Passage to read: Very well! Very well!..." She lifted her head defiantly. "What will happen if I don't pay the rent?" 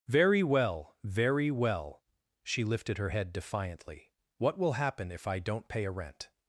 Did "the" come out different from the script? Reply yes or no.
yes